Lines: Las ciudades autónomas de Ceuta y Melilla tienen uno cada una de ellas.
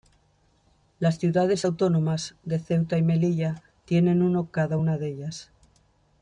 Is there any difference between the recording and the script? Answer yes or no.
no